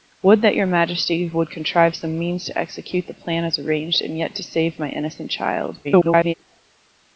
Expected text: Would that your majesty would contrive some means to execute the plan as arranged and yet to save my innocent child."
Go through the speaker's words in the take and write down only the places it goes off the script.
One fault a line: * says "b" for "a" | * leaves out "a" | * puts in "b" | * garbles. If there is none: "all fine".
* garbles